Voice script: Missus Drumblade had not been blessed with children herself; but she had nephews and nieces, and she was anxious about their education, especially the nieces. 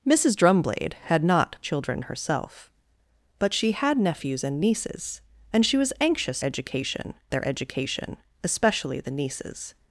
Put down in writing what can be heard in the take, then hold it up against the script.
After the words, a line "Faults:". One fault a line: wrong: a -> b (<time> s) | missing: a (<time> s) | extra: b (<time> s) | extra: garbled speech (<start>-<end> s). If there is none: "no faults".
Missus Drumblade had not children herself; but she had nephews and nieces, and she was anxious education their education, especially the nieces.
Faults:
missing: been blessed with (1.6 s)
wrong: about -> education (6.4 s)